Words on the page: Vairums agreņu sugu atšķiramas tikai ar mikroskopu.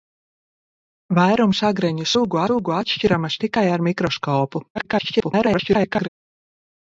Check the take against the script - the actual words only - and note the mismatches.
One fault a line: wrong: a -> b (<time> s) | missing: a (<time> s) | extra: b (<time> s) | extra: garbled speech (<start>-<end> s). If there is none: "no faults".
extra: sugu (2.5 s)
extra: garbled speech (4.8-6.1 s)